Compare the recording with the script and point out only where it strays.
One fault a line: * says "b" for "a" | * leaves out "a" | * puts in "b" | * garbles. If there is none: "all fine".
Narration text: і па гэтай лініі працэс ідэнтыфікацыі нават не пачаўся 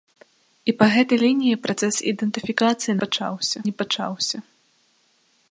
* says "пачаўся" for "нават"